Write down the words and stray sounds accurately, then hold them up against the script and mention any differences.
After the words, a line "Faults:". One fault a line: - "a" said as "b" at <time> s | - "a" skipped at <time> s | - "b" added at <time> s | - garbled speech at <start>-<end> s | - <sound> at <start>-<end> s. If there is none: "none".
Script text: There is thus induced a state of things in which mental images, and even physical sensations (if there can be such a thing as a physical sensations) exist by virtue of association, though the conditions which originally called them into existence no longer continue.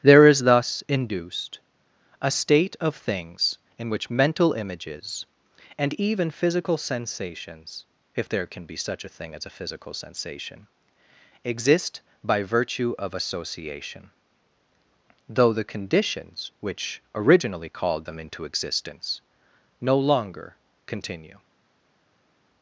There is thus induced a state of things in which mental images, and even physical sensations (if there can be such a thing as a physical sensation) exist by virtue of association, though the conditions which originally called them into existence no longer continue.
Faults:
- "sensations" said as "sensation" at 9.9 s